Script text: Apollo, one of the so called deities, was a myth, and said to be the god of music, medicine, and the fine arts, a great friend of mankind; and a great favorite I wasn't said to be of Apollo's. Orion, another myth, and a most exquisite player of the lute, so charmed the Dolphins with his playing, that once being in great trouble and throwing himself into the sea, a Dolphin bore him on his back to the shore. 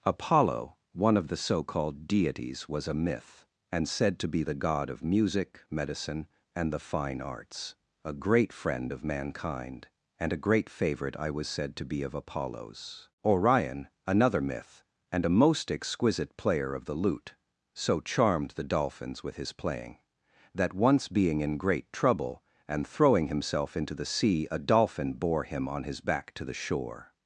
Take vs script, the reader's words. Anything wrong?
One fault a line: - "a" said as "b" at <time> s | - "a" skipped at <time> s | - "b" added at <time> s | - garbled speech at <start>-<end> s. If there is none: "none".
- "wasn't" said as "was" at 11.3 s